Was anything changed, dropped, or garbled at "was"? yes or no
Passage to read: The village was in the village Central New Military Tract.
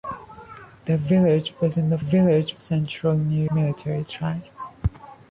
no